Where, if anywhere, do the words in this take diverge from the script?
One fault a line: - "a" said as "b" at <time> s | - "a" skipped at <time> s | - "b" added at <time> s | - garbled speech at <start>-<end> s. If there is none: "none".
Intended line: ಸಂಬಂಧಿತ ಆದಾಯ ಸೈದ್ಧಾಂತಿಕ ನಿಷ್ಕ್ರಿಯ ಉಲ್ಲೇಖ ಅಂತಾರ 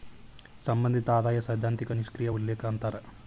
none